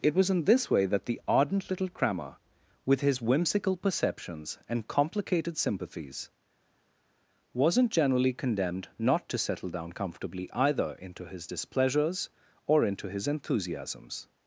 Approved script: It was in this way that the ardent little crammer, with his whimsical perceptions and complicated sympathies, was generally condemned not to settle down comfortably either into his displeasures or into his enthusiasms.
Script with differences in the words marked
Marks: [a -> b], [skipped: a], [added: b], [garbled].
It was in this way that the ardent little crammer, with his whimsical perceptions and complicated sympathies, [was -> wasn't] generally condemned not to settle down comfortably either into his displeasures or into his enthusiasms.